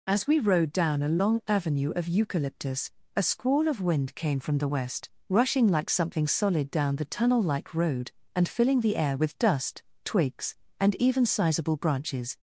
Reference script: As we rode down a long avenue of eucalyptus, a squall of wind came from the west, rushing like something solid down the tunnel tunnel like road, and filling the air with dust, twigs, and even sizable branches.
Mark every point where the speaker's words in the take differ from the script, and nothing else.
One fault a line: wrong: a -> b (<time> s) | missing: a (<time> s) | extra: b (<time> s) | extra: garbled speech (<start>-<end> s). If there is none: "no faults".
missing: tunnel (7.4 s)